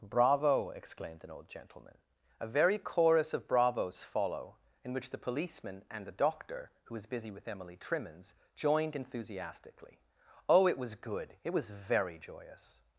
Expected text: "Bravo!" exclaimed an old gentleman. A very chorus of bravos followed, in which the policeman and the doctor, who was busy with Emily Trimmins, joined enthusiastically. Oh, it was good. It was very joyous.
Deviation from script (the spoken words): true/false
true